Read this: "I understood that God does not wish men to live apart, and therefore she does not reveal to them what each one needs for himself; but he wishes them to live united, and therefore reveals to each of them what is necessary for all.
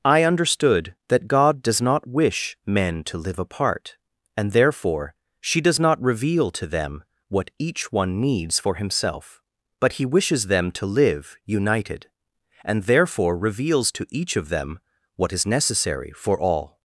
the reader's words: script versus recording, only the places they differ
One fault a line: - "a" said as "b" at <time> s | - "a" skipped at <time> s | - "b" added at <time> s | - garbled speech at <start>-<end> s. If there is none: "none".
none